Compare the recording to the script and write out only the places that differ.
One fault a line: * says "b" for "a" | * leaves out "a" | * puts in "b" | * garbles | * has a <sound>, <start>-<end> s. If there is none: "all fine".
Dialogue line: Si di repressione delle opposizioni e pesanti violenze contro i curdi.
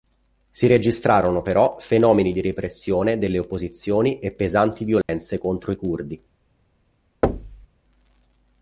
* puts in "registrarono però fenomeni"
* has a dropout, 5.0-5.1 s
* has a thud, 7.2-7.7 s